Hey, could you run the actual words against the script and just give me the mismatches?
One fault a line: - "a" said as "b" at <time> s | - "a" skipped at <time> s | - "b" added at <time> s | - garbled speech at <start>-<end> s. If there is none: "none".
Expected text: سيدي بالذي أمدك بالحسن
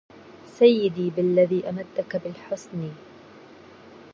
none